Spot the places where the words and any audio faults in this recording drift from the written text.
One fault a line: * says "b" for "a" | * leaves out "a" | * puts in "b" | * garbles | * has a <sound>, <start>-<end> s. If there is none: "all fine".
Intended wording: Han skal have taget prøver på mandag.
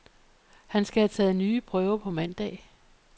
* puts in "nye"